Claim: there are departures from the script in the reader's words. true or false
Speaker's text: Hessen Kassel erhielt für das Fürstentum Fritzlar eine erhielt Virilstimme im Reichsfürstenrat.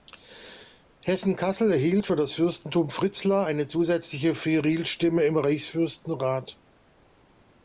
true